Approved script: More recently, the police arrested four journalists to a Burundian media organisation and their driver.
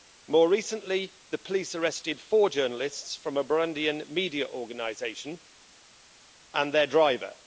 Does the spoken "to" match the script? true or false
false